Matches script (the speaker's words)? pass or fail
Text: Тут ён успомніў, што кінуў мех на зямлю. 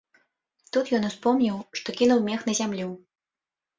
pass